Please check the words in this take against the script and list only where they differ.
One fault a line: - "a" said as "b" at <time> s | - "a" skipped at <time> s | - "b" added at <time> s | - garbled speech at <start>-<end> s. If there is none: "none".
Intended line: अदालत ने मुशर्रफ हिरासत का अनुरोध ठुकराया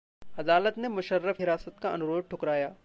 none